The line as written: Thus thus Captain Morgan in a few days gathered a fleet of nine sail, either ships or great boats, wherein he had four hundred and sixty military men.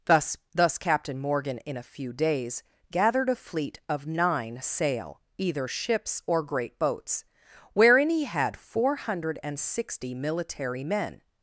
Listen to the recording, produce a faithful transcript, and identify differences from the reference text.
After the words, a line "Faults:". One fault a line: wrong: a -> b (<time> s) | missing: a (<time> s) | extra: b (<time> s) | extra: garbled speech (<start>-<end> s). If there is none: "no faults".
Thus thus Captain Morgan in a few days gathered a fleet of nine sail, either ships or great boats, wherein he had four hundred and sixty military men.
Faults:
no faults